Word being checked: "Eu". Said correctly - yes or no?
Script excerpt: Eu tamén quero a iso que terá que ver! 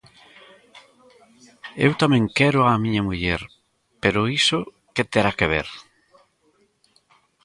yes